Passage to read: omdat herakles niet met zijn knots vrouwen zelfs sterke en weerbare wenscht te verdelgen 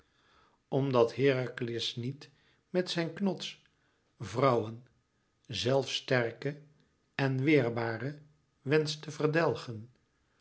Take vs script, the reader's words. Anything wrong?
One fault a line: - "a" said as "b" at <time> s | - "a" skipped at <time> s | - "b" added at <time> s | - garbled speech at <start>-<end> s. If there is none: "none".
none